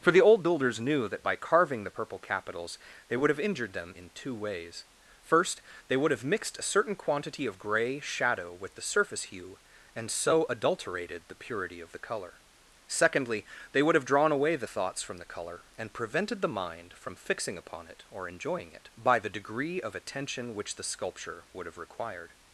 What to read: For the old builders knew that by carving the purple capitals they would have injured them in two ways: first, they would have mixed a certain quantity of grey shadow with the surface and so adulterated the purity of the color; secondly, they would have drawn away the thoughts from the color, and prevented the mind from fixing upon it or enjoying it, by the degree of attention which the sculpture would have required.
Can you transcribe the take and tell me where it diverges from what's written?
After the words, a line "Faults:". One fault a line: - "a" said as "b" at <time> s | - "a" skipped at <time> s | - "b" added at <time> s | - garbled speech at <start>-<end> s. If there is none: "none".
For the old builders knew that by carving the purple capitals they would have injured them in two ways: first, they would have mixed a certain quantity of grey shadow with the surface hue, and so adulterated the purity of the color; secondly, they would have drawn away the thoughts from the color, and prevented the mind from fixing upon it or enjoying it, by the degree of attention which the sculpture would have required.
Faults:
- "hue" added at 9.3 s